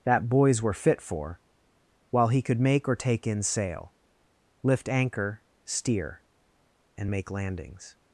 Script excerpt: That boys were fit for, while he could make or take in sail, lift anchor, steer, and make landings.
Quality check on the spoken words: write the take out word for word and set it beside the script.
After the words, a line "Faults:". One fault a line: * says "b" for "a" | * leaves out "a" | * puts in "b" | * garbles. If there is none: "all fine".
That boys were fit for, while he could make or take in sail, lift anchor, steer, and make landings.
Faults:
all fine